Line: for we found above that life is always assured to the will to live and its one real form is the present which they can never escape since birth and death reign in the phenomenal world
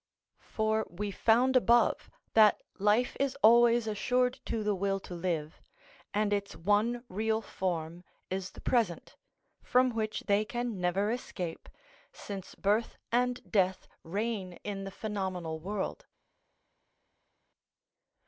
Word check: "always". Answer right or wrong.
right